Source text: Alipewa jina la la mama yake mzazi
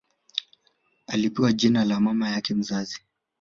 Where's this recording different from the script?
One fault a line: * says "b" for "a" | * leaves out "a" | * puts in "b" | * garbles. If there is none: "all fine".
* leaves out "la"